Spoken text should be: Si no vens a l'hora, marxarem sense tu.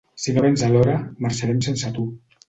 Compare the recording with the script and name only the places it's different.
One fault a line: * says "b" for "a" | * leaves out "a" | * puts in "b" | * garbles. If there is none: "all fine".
all fine